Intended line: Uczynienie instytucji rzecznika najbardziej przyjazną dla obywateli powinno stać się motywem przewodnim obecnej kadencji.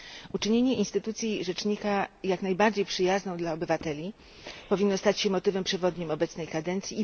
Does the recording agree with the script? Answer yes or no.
no